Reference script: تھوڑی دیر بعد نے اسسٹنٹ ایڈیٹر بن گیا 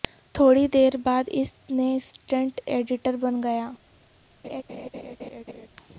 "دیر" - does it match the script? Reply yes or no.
yes